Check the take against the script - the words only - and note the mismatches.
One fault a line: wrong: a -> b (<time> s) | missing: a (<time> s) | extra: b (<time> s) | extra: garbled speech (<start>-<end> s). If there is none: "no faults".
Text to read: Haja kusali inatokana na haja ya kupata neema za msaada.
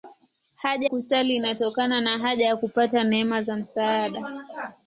no faults